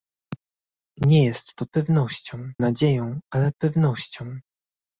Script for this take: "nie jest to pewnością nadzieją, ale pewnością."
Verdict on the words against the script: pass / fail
pass